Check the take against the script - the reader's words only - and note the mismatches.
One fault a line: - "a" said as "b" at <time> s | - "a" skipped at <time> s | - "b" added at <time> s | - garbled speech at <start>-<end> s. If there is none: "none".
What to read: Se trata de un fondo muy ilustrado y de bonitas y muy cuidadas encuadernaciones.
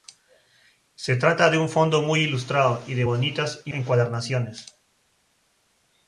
- "muy cuidadas" skipped at 3.7 s